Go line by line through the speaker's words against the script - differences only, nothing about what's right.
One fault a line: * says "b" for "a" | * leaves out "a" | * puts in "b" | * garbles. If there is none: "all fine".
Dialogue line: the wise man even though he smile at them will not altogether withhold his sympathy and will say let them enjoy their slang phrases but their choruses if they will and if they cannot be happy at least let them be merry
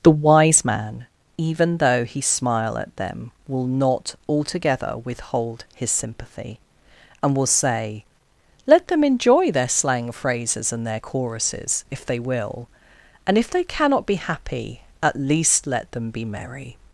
* says "and" for "but"